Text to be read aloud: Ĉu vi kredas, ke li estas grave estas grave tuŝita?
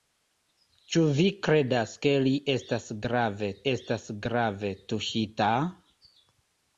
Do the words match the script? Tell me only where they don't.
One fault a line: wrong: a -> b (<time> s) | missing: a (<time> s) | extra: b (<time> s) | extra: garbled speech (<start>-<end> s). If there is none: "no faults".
no faults